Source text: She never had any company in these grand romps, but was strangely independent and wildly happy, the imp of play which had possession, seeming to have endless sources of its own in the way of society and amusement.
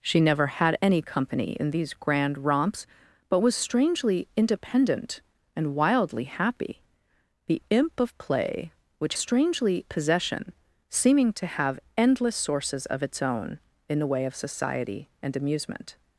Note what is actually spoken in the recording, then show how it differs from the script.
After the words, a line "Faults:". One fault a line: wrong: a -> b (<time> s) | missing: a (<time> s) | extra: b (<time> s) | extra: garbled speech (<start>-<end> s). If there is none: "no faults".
She never had any company in these grand romps, but was strangely independent and wildly happy, the imp of play which strangely possession, seeming to have endless sources of its own in the way of society and amusement.
Faults:
wrong: had -> strangely (9.1 s)